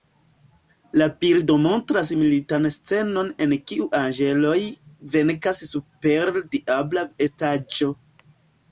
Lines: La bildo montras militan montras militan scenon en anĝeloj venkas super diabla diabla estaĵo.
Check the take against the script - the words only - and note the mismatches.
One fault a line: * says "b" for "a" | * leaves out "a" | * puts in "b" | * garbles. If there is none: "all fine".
* leaves out "montras militan"
* puts in "kiu"
* leaves out "diabla"